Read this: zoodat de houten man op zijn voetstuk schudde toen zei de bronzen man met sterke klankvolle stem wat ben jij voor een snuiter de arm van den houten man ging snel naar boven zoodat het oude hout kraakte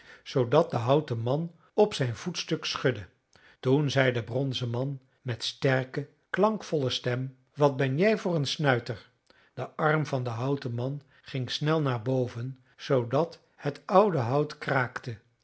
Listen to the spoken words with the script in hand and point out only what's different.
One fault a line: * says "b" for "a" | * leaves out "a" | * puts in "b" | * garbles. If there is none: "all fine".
all fine